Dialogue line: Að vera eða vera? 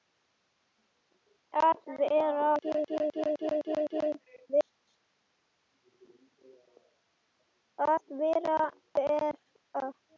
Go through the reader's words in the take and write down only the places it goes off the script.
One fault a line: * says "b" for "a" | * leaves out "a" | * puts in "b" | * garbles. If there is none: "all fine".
all fine